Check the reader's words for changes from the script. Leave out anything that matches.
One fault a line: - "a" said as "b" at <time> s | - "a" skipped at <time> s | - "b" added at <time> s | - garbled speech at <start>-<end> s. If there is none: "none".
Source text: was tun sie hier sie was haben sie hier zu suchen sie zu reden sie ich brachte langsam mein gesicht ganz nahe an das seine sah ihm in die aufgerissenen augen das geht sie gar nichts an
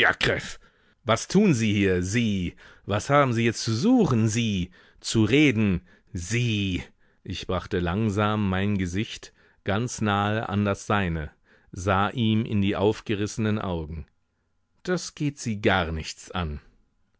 none